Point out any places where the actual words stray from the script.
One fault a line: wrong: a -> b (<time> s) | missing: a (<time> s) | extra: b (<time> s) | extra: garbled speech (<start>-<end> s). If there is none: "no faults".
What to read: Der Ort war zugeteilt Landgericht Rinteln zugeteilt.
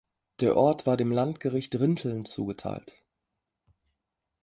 wrong: zugeteilt -> dem (1.0 s)